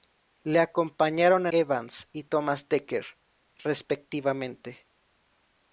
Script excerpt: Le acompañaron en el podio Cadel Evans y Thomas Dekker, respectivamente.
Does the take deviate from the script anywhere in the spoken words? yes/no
yes